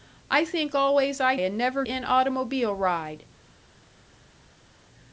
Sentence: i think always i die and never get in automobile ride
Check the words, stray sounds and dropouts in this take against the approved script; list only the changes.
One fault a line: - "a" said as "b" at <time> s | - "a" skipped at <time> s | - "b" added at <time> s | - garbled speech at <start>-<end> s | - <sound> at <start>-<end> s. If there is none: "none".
- "die" skipped at 1.4 s
- "get" skipped at 1.9 s